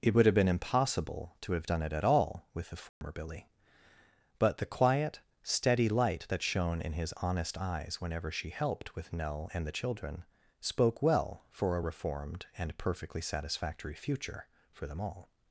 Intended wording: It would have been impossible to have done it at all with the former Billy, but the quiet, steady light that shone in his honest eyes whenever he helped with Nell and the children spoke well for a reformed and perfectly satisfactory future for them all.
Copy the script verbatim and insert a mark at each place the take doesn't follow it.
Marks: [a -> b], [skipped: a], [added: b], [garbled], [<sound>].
It would have been impossible to have done it at all with the former [dropout] Billy, but the quiet, steady light that shone in his honest eyes whenever [he -> she] helped with Nell and the children spoke well for a reformed and perfectly satisfactory future for them all.